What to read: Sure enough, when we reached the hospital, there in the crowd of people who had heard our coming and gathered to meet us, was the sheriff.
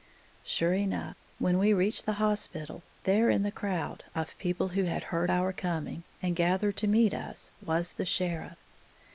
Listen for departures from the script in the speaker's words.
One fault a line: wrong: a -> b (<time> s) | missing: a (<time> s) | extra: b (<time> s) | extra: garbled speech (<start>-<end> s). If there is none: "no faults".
no faults